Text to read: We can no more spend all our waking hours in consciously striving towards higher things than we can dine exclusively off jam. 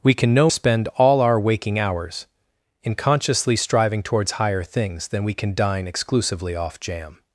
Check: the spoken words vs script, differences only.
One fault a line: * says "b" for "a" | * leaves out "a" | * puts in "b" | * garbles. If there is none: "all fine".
* leaves out "more"